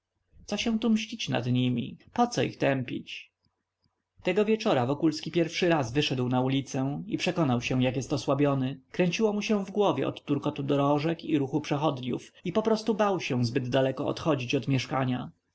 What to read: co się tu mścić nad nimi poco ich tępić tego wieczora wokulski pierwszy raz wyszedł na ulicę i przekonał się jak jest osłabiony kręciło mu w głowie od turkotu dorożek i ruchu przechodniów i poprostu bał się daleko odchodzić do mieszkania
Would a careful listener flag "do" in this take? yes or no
yes